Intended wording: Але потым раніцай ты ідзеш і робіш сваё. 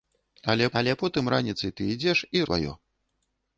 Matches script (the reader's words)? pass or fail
fail